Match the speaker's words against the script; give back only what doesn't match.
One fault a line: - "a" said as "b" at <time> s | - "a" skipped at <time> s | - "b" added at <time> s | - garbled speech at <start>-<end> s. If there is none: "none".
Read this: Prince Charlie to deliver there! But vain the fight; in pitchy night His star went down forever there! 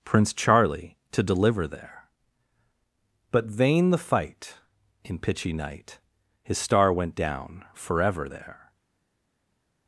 none